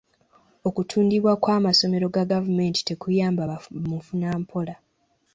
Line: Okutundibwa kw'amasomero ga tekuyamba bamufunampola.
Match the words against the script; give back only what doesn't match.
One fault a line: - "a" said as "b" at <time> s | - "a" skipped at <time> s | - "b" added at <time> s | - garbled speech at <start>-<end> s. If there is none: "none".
- "gavumenti" added at 2.3 s